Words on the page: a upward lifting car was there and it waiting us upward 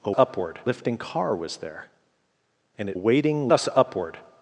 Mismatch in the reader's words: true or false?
false